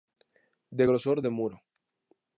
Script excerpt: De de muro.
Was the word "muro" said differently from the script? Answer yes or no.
no